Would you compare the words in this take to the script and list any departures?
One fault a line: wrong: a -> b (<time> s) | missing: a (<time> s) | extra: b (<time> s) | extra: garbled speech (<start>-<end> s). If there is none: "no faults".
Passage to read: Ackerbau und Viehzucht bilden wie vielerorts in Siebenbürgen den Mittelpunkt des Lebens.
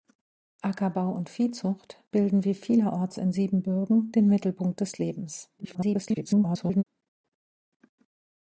extra: garbled speech (5.6-6.8 s)